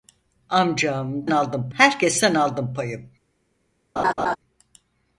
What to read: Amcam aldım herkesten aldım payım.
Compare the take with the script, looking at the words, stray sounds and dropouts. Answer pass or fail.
fail